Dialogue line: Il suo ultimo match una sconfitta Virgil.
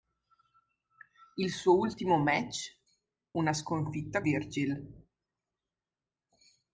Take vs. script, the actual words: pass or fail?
pass